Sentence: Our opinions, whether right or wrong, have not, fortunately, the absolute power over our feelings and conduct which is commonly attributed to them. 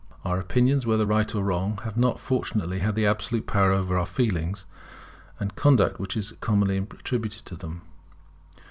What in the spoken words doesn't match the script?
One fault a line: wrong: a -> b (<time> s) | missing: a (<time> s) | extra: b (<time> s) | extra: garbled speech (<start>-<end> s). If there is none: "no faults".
no faults